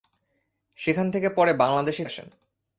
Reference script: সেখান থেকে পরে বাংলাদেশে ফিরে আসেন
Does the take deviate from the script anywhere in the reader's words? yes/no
yes